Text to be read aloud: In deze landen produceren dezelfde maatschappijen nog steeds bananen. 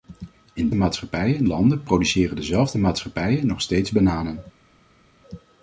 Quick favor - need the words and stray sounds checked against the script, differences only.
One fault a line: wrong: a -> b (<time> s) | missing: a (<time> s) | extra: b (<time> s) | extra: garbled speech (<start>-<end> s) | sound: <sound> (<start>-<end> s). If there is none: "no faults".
wrong: deze -> maatschappijen (0.7 s)